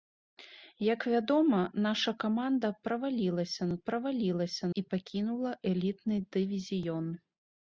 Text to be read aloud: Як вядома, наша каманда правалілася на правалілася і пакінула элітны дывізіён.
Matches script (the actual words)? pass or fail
pass